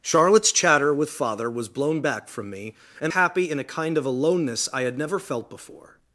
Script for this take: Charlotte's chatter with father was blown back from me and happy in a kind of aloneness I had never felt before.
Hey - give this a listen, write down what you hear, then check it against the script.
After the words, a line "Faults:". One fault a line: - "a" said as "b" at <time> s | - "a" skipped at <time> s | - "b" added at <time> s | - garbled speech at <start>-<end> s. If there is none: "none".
Charlotte's chatter with father was blown back from me and happy in a kind of aloneness I had never felt before.
Faults:
none